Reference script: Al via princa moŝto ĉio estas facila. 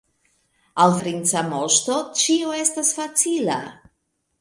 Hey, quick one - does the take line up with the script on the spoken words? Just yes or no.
no